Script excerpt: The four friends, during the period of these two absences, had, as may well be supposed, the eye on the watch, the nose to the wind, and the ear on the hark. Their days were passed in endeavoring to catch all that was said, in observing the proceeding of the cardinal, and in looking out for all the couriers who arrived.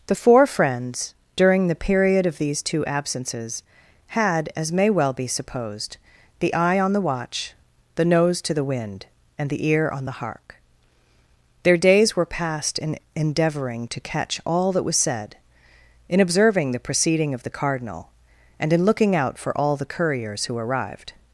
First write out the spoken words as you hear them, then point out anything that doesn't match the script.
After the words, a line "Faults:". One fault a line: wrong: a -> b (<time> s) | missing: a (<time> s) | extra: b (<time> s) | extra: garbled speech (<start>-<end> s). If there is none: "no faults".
The four friends, during the period of these two absences, had, as may well be supposed, the eye on the watch, the nose to the wind, and the ear on the hark. Their days were passed in endeavoring to catch all that was said, in observing the proceeding of the cardinal, and in looking out for all the couriers who arrived.
Faults:
no faults